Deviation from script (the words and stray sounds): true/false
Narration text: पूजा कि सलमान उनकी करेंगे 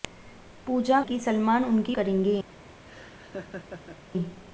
true